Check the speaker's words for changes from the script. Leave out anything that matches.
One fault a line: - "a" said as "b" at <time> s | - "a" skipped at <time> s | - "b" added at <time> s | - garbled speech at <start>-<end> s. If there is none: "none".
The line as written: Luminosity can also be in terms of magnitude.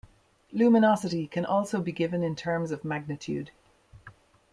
- "given" added at 1.9 s